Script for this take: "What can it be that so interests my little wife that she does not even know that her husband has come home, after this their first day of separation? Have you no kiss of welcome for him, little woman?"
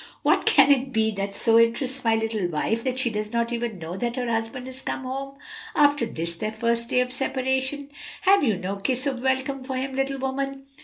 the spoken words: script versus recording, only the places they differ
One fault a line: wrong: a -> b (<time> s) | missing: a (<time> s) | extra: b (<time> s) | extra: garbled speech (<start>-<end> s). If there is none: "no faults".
no faults